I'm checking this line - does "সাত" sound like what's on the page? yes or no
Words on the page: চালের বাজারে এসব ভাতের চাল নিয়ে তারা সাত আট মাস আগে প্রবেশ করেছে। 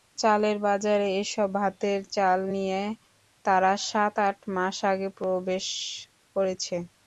yes